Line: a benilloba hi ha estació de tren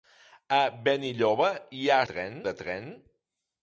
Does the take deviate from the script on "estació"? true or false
true